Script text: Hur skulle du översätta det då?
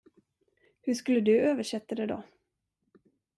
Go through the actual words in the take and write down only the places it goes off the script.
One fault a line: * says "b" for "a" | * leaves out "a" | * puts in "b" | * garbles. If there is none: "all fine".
all fine